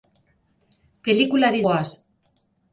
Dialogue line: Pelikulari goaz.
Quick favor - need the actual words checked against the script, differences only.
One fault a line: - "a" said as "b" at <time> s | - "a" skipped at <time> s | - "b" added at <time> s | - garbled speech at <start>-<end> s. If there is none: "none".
none